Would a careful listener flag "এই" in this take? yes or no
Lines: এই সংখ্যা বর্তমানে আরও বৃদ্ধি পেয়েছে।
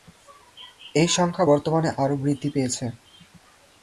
no